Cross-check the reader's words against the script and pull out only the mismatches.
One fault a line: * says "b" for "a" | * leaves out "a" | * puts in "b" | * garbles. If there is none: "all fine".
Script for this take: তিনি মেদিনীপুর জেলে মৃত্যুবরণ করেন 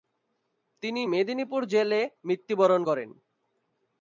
all fine